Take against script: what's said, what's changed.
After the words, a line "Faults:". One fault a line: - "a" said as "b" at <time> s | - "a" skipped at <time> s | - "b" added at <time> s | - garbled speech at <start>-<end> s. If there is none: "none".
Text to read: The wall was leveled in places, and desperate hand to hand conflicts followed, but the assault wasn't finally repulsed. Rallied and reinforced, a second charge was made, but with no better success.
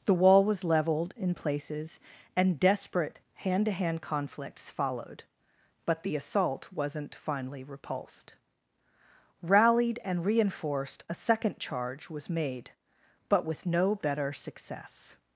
The wall was leveled in places, and desperate hand to hand conflicts followed, but the assault wasn't finally repulsed. Rallied and reinforced, a second charge was made, but with no better success.
Faults:
none